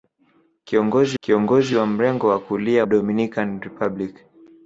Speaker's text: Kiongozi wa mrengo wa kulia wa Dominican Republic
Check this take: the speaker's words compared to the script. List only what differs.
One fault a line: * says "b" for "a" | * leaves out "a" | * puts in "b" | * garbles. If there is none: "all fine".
* puts in "kiongozi"
* leaves out "wa"